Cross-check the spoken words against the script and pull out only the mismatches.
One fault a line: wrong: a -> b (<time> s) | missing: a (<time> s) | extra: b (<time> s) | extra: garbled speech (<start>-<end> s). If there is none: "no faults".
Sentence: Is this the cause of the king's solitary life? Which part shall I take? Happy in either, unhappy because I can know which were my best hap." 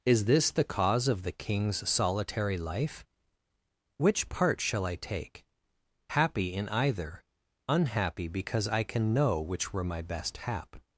no faults